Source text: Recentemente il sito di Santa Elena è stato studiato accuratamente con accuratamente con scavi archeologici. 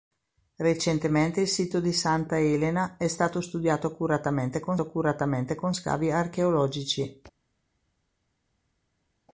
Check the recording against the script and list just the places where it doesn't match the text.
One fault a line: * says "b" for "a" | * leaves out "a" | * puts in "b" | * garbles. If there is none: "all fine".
all fine